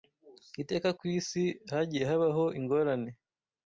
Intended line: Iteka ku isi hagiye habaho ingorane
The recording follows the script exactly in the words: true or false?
true